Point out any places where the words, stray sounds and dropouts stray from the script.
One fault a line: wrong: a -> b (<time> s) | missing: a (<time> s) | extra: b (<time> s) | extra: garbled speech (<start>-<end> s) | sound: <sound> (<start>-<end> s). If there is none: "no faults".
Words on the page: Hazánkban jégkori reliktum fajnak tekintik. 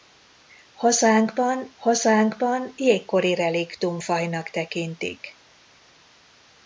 extra: hazánkban (1.8 s)